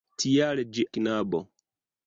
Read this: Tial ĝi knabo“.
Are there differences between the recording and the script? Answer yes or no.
no